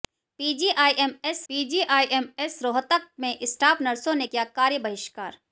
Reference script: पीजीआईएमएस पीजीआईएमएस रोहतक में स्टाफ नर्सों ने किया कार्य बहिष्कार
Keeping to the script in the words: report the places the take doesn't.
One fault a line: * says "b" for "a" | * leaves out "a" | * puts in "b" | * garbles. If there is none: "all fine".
all fine